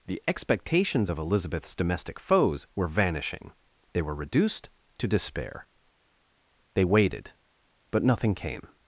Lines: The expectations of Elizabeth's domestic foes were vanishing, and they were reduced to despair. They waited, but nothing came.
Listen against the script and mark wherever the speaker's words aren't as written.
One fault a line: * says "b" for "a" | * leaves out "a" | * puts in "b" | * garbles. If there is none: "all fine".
* leaves out "and"